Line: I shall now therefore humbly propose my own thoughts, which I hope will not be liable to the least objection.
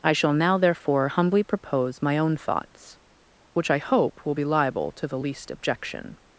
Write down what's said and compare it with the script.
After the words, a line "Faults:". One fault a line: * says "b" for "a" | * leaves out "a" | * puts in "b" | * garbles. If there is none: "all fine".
I shall now therefore humbly propose my own thoughts, which I hope will be liable to the least objection.
Faults:
* leaves out "not"